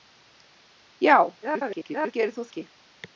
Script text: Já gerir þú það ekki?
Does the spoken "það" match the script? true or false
false